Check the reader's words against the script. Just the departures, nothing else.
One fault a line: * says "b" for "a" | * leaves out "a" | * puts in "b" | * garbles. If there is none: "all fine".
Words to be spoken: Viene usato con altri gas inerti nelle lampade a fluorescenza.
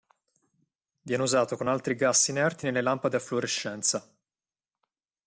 all fine